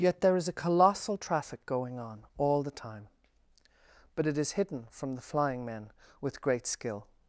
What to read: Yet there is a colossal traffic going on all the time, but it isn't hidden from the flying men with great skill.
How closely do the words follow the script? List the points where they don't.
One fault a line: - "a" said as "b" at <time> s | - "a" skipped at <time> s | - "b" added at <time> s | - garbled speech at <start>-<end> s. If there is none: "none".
- "isn't" said as "is" at 4.3 s